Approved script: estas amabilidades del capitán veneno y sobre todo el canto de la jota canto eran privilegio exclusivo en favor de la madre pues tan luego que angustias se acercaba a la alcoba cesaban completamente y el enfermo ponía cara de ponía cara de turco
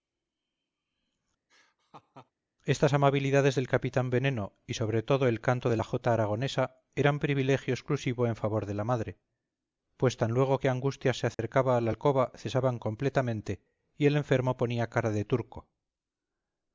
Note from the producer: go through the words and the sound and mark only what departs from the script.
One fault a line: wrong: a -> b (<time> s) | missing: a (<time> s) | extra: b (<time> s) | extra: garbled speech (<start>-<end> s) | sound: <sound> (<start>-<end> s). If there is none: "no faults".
sound: laugh (1.5-2.3 s)
wrong: canto -> aragonesa (6.1 s)
sound: dropout (11.3-11.4 s)
missing: ponía cara de (15.2 s)